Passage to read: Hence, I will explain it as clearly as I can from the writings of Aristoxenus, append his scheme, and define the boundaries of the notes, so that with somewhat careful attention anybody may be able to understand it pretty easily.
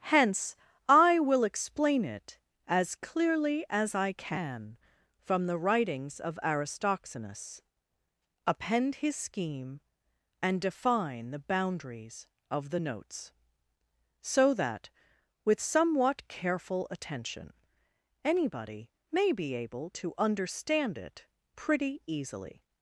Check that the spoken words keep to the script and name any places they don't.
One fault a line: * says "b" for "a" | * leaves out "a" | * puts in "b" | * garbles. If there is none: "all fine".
all fine